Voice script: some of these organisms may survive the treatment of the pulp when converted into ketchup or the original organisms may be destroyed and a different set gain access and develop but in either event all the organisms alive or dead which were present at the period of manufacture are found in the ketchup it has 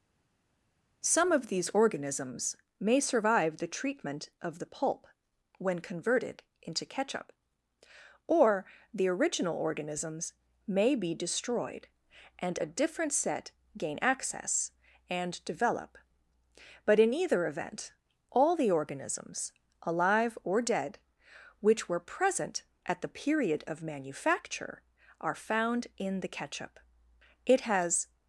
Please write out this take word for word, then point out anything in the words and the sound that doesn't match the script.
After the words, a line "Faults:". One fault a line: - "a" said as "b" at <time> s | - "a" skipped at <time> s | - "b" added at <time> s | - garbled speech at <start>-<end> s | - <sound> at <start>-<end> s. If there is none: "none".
some of these organisms may survive the treatment of the pulp when converted into ketchup or the original organisms may be destroyed and a different set gain access and develop but in either event all the organisms alive or dead which were present at the period of manufacture are found in the ketchup it has
Faults:
none